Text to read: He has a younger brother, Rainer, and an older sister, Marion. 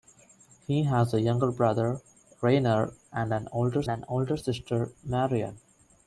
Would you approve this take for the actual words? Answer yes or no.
no